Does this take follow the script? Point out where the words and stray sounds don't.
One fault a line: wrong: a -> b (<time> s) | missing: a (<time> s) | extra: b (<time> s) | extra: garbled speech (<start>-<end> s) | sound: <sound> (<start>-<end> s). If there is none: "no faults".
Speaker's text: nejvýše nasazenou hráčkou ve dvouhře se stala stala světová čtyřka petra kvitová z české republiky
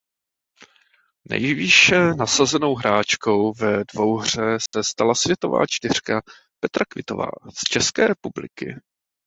sound: dropout (4.7-4.7 s)
missing: stala (5.2 s)